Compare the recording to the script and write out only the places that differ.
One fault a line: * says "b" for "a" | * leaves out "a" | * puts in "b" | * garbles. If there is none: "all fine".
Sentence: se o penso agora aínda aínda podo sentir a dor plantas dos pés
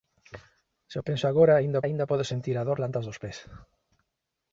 all fine